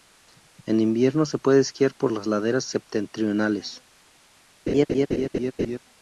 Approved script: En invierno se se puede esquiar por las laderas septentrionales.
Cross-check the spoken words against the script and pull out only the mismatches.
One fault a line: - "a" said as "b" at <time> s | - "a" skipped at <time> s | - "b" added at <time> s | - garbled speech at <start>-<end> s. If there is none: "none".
- "se" skipped at 1.4 s